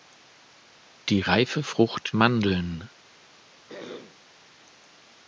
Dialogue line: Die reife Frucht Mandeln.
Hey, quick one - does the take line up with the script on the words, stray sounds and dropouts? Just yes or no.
no